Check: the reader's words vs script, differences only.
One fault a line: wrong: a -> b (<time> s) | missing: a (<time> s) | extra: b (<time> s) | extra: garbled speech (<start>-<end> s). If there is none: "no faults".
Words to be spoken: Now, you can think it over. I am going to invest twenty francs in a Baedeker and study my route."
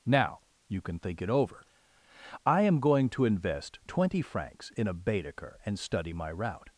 no faults